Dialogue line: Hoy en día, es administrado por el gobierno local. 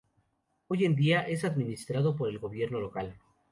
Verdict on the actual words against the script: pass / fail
pass